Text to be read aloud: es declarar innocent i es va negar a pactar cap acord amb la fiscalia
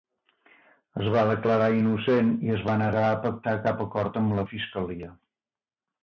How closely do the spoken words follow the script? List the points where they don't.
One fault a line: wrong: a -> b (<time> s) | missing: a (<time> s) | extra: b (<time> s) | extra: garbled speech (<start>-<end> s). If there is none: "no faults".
extra: va (1.1 s)